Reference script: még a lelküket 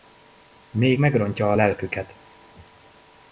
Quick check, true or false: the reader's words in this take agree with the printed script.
false